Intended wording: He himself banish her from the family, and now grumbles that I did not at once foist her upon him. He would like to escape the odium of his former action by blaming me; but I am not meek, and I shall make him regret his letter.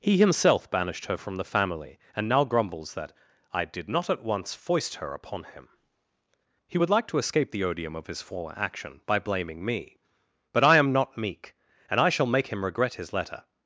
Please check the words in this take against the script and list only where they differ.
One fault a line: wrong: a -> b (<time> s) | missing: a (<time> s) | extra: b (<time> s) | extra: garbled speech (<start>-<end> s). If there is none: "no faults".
wrong: banish -> banished (0.7 s)